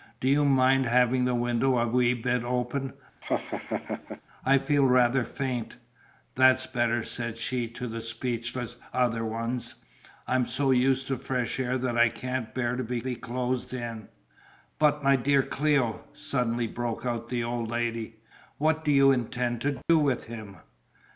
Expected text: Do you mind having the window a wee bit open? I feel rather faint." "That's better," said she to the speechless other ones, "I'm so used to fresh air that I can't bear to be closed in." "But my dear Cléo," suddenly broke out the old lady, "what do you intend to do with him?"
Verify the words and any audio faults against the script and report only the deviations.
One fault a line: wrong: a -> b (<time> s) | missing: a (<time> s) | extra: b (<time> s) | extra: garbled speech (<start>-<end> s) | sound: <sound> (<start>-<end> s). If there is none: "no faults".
sound: laugh (3.2-4.2 s)
extra: be (13.0 s)
sound: dropout (19.8-19.9 s)